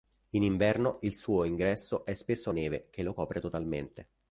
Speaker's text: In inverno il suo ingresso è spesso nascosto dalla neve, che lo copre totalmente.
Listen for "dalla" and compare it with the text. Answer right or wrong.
wrong